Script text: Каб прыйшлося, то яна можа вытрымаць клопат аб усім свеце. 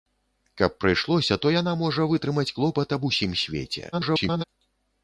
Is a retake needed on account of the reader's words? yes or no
yes